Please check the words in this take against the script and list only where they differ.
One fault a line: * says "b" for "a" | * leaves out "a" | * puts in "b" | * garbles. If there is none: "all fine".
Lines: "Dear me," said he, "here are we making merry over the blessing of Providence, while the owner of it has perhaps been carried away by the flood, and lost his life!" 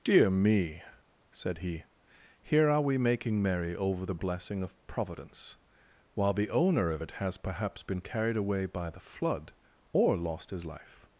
* says "or" for "and"